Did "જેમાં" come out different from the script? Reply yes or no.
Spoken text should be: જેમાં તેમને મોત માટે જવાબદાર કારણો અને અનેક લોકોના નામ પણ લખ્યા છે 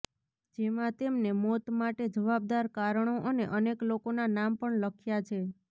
no